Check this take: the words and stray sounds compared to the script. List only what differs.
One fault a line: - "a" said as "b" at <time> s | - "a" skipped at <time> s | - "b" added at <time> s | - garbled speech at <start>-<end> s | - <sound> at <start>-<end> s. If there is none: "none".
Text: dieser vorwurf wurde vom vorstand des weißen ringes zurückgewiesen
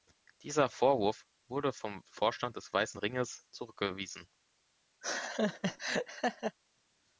- laugh at 5.0-6.6 s